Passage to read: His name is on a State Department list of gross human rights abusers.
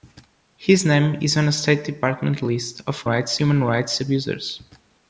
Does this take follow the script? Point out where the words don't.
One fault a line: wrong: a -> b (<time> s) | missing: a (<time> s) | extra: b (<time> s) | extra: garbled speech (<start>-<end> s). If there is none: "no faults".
wrong: gross -> rights (3.0 s)